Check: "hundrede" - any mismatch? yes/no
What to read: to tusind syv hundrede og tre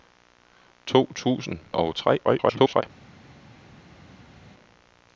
yes